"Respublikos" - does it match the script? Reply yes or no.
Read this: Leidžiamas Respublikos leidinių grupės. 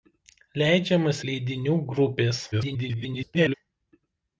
no